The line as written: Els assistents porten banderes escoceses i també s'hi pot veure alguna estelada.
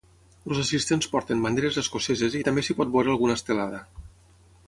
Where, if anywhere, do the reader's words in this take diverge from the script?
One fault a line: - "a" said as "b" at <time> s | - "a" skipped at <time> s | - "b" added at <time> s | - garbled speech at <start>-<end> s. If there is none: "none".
none